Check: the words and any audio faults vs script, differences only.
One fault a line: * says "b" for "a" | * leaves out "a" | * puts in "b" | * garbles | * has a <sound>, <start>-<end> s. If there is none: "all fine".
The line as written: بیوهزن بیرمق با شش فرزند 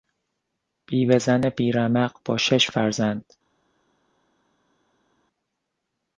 all fine